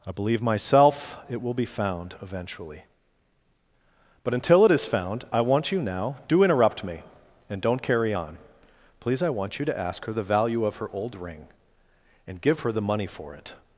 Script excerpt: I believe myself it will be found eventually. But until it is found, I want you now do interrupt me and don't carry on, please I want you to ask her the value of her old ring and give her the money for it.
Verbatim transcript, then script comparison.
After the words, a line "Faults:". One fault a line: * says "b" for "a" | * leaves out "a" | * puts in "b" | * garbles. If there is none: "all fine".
I believe myself it will be found eventually. But until it is found, I want you now do interrupt me and don't carry on, please I want you to ask her the value of her old ring and give her the money for it.
Faults:
all fine